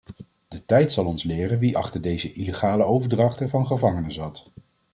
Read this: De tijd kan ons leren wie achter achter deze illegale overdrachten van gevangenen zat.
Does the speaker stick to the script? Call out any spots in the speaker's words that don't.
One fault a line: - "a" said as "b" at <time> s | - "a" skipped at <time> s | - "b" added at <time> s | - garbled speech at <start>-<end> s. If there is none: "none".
- "kan" said as "zal" at 0.9 s
- "achter" skipped at 2.0 s